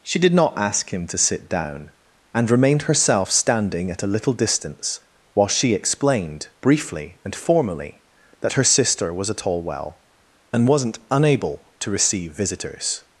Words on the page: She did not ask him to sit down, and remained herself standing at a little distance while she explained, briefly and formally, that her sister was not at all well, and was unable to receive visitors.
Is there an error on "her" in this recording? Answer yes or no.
no